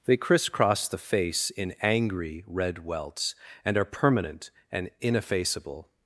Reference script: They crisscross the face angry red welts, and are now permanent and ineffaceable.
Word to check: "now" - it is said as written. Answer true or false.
false